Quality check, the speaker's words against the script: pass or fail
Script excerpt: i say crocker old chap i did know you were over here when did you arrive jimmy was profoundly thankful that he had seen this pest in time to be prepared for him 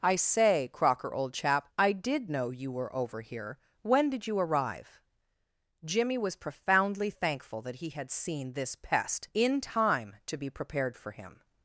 pass